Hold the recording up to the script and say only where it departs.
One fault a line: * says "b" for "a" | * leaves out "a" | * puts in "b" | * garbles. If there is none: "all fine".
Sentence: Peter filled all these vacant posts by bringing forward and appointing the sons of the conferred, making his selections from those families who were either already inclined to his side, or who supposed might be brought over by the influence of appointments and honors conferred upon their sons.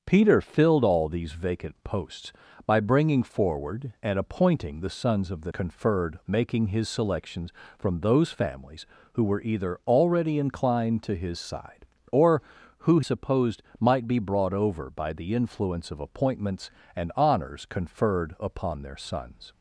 all fine